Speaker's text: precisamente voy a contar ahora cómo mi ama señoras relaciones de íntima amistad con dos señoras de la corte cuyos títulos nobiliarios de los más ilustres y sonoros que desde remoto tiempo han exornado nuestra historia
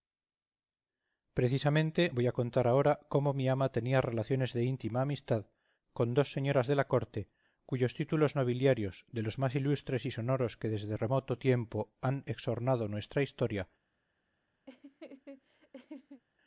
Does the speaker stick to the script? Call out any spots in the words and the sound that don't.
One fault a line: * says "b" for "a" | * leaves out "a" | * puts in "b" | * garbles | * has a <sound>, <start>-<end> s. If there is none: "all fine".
* says "tenía" for "señoras"
* has a laugh, 14.7-16.2 s